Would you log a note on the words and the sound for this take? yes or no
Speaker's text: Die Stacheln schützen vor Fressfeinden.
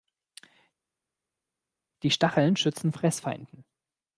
yes